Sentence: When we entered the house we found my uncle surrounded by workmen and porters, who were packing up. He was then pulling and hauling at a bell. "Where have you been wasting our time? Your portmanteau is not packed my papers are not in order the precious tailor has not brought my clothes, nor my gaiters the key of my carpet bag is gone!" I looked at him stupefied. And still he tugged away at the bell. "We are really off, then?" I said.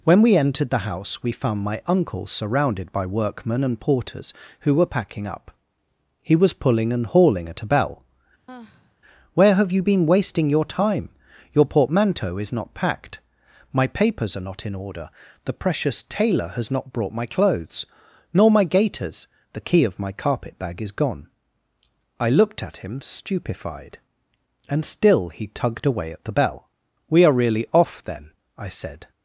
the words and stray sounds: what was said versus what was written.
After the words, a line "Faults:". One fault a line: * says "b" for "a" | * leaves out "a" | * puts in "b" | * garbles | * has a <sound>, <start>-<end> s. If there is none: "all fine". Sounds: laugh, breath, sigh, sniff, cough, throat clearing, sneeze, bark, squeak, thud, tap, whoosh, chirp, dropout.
When we entered the house we found my uncle surrounded by workmen and porters, who were packing up. He was pulling and hauling at a bell. "Where have you been wasting your time? Your portmanteau is not packed my papers are not in order the precious tailor has not brought my clothes, nor my gaiters the key of my carpet bag is gone!" I looked at him stupefied. And still he tugged away at the bell. "We are really off, then?" I said.
Faults:
* leaves out "then"
* has a sigh, 8.5-9.0 s
* says "your" for "our"